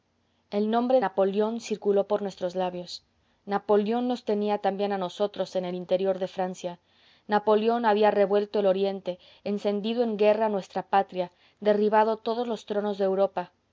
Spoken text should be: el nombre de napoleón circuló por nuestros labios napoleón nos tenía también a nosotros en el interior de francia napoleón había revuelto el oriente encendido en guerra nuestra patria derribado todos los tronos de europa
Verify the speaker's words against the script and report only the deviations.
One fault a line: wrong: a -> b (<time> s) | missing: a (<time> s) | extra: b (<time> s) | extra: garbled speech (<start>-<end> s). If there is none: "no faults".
missing: de (1.0 s)